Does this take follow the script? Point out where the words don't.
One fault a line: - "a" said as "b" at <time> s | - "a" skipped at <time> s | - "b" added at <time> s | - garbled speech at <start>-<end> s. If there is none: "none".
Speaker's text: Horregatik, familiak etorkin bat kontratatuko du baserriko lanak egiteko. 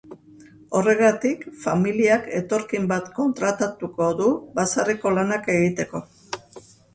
none